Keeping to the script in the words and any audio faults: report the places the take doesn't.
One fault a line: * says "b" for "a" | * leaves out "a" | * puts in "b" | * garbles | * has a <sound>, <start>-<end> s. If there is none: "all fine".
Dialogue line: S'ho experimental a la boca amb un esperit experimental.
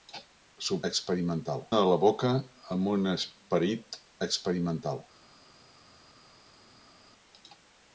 all fine